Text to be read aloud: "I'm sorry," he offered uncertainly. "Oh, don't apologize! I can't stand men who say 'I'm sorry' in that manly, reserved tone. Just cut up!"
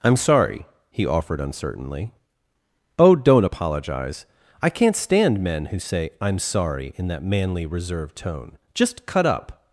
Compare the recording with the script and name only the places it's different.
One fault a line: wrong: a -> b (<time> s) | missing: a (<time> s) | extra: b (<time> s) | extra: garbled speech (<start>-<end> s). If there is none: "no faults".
no faults